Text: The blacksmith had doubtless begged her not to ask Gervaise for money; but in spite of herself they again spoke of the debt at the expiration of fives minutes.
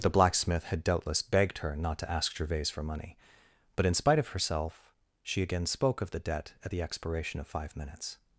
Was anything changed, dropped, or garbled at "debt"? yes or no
no